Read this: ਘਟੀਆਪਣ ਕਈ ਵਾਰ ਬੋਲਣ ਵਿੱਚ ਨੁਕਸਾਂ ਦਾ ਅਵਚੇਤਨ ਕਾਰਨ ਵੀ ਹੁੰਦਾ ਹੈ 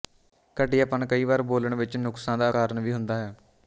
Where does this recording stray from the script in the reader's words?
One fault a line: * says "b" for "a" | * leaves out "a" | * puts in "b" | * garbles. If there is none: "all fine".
* leaves out "ਅਵਚੇਤਨ"